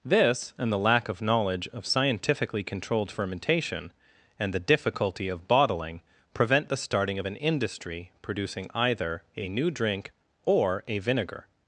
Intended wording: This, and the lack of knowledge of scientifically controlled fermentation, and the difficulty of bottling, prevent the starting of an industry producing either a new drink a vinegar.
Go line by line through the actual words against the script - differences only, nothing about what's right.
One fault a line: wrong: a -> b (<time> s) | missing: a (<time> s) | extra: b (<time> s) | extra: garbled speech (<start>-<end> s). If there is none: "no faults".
extra: or (10.4 s)